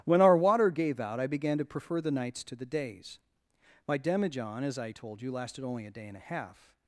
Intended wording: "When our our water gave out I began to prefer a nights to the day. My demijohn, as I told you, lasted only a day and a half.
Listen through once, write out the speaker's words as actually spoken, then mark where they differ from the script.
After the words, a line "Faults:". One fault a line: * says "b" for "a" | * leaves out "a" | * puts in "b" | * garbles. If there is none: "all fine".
"When our water gave out I began to prefer the nights to the days. My demijohn, as I told you, lasted only a day and a half.
Faults:
* leaves out "our"
* says "the" for "a"
* says "days" for "day"